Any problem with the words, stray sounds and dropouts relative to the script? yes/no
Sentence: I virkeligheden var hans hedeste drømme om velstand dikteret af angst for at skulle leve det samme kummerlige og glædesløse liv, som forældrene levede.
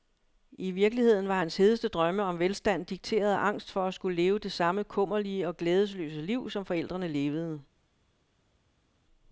no